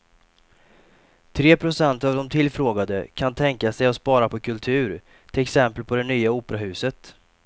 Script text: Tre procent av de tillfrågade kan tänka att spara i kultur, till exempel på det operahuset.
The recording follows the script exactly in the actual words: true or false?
false